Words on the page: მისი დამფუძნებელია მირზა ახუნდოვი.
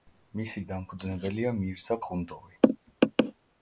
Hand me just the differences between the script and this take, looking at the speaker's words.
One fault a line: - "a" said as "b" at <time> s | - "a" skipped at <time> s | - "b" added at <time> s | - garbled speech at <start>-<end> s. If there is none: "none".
none